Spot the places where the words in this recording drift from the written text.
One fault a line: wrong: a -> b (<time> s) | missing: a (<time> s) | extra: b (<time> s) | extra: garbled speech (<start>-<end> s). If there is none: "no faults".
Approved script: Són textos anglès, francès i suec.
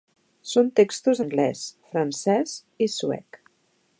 no faults